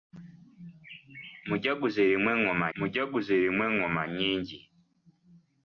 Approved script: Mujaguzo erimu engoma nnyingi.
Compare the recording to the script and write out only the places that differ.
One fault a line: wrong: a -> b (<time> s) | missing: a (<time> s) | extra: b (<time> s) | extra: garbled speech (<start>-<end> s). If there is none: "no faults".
extra: mujaguzo erimu engoma (2.8 s)